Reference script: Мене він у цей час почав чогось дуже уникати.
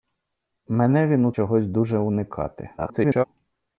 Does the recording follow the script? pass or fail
fail